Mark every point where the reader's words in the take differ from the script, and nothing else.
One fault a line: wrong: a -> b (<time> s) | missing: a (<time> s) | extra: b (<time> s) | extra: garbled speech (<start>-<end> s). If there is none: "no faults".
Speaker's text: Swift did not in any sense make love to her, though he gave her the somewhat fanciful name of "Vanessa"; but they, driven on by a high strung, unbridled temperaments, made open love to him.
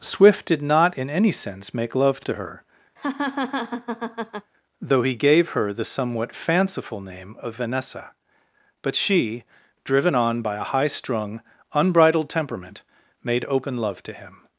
wrong: they -> she (8.9 s)
wrong: temperaments -> temperament (12.3 s)